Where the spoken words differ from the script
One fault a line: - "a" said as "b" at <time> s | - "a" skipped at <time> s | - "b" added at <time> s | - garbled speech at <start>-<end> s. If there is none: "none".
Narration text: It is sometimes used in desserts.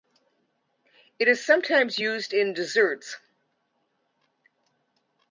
none